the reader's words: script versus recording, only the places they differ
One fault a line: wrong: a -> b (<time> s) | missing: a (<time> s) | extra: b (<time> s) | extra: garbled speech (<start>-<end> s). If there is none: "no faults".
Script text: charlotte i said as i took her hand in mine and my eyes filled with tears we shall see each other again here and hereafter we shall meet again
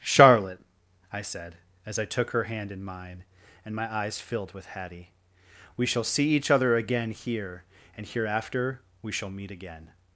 wrong: tears -> hattie (4.7 s)